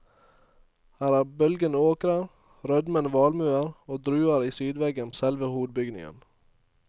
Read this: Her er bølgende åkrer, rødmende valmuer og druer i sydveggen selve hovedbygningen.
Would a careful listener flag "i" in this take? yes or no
no